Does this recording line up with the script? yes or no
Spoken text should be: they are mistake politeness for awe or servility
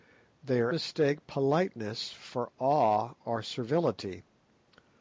yes